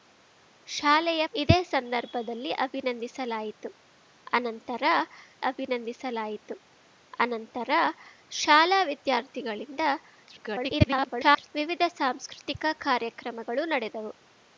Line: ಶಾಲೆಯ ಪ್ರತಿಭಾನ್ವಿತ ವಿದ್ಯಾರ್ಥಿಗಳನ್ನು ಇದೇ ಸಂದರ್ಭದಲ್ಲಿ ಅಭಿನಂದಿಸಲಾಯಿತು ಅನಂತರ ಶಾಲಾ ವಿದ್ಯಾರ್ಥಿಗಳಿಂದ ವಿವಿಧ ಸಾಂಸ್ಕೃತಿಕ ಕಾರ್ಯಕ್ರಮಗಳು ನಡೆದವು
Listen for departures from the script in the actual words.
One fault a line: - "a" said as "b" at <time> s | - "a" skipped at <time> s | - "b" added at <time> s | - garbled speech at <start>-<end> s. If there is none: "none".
- "ಪ್ರತಿಭಾನ್ವಿತ ವಿದ್ಯಾರ್ಥಿಗಳನ್ನು ಇದೇ ಸಂದರ್ಭದಲ್ಲಿ" said as "ಇದೇ ಸಂದರ್ಭದಲ್ಲಿ ಅಭಿನಂದಿಸಲಾಯಿತು ಅನಂತರ" at 1.3 s
- garbled speech at 10.3-11.5 s